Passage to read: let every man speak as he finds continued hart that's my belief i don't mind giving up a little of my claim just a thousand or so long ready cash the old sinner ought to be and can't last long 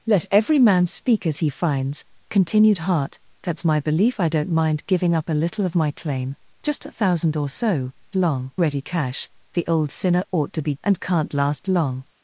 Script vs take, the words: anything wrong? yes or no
no